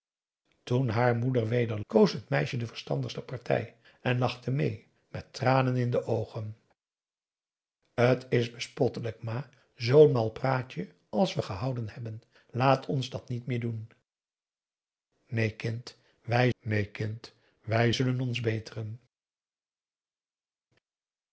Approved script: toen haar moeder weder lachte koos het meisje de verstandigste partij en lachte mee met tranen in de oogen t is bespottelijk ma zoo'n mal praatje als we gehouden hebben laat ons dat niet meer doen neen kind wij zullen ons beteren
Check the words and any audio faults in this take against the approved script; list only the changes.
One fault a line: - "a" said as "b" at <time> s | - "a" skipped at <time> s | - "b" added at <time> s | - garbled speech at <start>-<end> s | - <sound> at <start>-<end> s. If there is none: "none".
- "lachte" skipped at 1.8 s
- "neen kind wij" added at 16.6 s